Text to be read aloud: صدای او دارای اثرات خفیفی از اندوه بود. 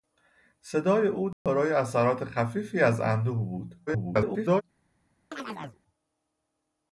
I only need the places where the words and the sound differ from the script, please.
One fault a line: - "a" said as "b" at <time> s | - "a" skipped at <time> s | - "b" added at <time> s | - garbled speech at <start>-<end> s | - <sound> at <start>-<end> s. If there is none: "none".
- dropout at 1.3-1.5 s
- garbled speech at 3.9-4.6 s
- chirp at 5.3-5.8 s